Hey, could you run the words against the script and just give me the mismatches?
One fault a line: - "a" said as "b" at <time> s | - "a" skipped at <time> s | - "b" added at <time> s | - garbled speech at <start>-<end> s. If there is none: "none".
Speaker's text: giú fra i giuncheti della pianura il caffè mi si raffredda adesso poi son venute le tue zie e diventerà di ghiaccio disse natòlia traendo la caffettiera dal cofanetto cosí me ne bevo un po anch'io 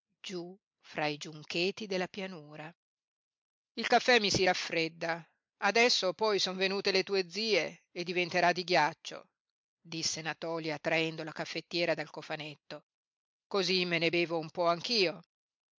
none